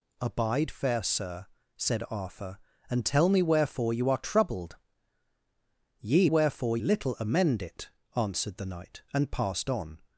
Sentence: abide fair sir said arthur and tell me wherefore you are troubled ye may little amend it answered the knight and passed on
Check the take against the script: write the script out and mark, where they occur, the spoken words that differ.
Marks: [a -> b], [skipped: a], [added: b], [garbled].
abide fair sir said arthur and tell me wherefore you are troubled ye [may -> wherefore] little amend it answered the knight and passed on